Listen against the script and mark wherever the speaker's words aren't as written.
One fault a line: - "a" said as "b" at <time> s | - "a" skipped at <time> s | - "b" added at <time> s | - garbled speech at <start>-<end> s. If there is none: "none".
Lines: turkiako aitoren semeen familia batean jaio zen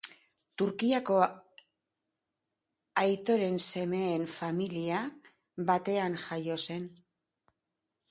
none